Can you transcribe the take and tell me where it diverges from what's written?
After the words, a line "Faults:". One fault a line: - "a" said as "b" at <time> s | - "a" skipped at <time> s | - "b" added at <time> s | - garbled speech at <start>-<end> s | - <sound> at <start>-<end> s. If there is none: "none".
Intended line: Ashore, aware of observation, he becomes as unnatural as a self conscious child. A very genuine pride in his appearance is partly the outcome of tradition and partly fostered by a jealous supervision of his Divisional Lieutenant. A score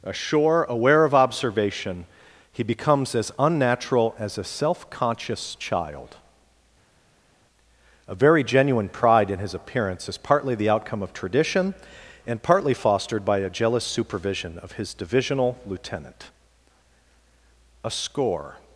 Ashore, aware of observation, he becomes as unnatural as a self conscious child. A very genuine pride in his appearance is partly the outcome of tradition and partly fostered by a jealous supervision of his Divisional Lieutenant. A score
Faults:
none